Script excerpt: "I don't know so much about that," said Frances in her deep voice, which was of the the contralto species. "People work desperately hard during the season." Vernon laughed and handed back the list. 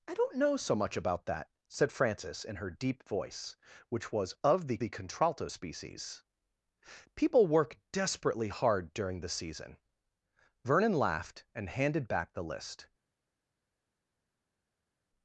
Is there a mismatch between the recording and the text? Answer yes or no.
no